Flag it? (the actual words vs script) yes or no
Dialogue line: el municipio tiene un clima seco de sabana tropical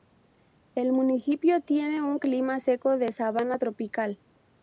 no